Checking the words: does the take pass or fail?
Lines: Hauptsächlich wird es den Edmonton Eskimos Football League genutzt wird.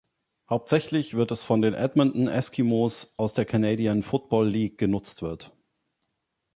fail